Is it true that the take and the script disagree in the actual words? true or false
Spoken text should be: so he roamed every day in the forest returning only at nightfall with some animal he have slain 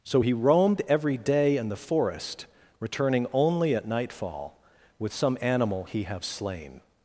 false